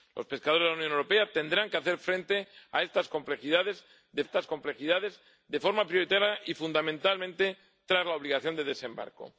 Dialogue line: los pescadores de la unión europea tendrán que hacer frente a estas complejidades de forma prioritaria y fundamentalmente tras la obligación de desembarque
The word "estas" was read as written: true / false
true